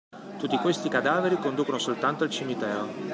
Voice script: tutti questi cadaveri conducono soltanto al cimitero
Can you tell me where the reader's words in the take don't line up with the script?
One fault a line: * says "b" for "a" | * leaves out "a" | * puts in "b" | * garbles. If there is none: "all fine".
all fine